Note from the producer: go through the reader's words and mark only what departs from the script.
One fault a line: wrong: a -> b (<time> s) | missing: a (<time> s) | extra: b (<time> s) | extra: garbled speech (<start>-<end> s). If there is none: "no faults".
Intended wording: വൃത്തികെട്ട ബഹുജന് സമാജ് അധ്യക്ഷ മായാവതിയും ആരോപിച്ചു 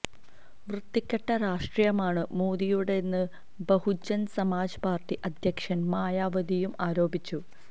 extra: രാഷ്ട്രീയമാണ് മോദിയുടേതെന്ന് (1.4 s)
extra: പാര്ട്ടി (4.9 s)